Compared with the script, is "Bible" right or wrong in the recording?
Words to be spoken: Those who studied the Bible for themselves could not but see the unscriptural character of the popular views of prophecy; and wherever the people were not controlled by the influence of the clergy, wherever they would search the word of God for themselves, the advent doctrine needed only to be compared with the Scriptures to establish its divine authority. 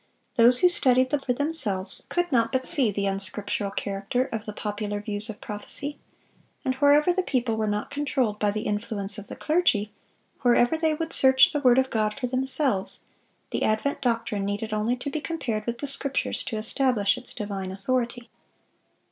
wrong